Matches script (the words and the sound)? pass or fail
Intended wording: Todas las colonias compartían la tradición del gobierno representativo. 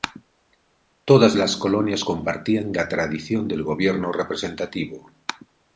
pass